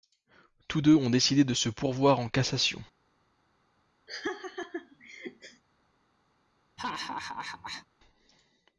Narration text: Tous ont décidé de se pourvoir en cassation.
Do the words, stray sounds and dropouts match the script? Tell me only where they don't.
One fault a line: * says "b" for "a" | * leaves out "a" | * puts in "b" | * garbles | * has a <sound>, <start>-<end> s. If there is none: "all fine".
* puts in "deux"
* has a laugh, 4.1-5.6 s
* has a laugh, 6.8-7.9 s